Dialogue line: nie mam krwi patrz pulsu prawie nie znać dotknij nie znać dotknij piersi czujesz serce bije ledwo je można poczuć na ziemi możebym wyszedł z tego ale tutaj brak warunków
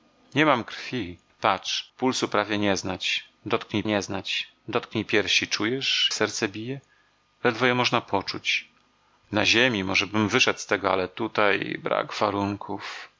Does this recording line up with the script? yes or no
yes